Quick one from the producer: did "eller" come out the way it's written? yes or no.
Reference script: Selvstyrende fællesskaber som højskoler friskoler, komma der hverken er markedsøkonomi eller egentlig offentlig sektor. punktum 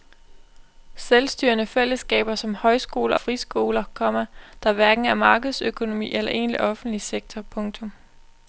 yes